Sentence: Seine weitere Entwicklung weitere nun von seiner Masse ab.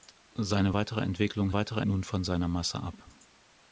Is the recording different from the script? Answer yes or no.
no